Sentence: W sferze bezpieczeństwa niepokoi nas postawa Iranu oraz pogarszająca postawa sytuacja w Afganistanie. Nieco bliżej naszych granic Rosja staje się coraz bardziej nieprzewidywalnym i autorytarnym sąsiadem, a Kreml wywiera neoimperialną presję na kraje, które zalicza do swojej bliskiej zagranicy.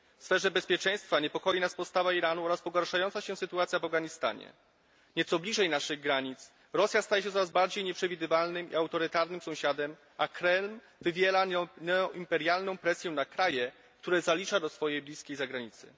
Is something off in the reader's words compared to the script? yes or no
yes